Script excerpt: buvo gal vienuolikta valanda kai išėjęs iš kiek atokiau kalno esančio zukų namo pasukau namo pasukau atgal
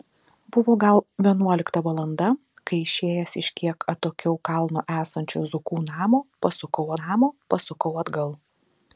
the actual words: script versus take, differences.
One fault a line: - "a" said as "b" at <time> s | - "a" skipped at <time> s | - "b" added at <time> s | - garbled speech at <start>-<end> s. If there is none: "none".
none